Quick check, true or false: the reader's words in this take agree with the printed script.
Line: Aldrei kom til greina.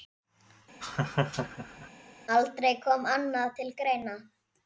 false